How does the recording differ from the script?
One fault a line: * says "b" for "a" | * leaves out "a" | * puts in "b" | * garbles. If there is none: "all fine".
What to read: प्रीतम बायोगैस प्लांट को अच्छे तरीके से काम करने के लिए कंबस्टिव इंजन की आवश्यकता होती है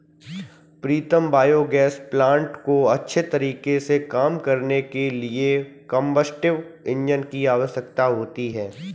all fine